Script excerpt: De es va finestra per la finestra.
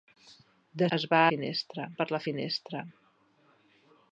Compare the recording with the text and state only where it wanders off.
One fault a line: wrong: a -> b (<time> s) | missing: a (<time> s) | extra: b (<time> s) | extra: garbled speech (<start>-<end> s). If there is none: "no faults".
no faults